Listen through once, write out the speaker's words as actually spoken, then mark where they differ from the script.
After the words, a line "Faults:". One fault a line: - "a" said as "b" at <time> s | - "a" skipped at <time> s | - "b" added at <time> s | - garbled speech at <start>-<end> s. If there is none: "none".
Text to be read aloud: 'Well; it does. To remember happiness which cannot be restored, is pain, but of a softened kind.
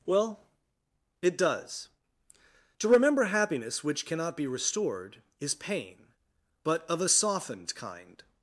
'Well; it does. To remember happiness which cannot be restored, is pain, but of a softened kind.
Faults:
none